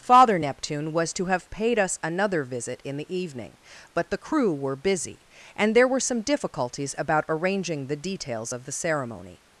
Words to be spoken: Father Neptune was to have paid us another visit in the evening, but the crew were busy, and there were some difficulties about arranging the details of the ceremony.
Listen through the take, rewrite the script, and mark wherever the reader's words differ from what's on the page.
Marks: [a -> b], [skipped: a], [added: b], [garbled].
Father Neptune was to have paid us another visit in the evening, but the crew were busy, and there were some difficulties about arranging the details of the ceremony.